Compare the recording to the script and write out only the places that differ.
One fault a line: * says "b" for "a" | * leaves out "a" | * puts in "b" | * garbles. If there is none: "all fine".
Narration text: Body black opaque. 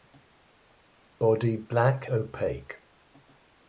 all fine